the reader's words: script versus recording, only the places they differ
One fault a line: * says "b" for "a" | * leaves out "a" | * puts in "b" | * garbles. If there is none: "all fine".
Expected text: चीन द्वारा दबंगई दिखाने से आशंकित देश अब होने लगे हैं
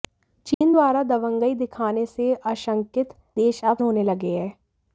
all fine